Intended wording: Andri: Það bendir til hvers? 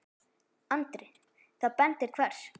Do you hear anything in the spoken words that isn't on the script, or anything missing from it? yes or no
yes